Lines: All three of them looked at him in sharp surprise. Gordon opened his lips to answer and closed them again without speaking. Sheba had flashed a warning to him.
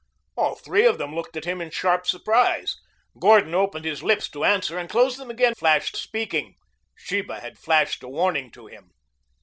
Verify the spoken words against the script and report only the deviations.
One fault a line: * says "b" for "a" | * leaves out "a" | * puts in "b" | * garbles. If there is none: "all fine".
* says "flashed" for "without"